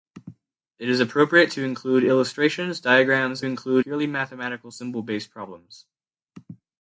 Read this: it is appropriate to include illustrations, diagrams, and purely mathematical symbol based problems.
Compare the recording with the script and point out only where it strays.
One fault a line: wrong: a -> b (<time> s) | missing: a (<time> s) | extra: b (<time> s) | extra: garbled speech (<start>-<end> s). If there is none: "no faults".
wrong: and -> include (3.4 s)